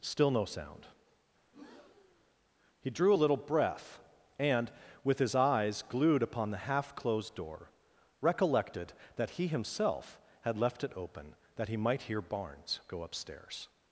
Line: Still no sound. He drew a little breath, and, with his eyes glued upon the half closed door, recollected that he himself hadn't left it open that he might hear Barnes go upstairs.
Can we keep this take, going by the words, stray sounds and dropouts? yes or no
no